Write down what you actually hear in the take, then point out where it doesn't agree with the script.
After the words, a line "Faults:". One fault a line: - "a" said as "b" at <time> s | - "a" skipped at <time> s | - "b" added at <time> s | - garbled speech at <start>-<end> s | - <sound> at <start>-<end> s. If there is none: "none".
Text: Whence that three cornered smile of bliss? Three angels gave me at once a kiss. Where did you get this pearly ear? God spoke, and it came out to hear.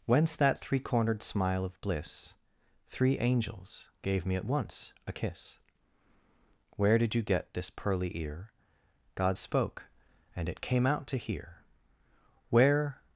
Whence that three cornered smile of bliss? Three angels gave me at once a kiss. Where did you get this pearly ear? God spoke, and it came out to hear. Where
Faults:
- "Where" added at 12.5 s